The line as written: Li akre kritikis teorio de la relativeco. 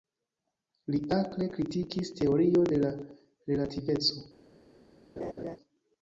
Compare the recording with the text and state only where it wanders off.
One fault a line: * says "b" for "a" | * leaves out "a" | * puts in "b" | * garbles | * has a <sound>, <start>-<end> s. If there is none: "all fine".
* has a laugh, 5.2-5.6 s